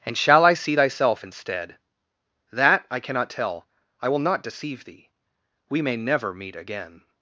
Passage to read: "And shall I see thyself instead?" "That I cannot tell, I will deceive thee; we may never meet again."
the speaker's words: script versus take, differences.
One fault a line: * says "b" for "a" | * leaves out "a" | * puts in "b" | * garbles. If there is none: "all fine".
* puts in "not"